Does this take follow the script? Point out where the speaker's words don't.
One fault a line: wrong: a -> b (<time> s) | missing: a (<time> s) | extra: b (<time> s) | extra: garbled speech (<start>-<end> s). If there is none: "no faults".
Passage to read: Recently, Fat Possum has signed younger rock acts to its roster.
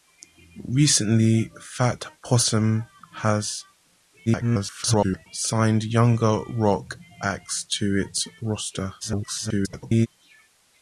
extra: garbled speech (4.3-5.3 s)
extra: garbled speech (9.0-10.1 s)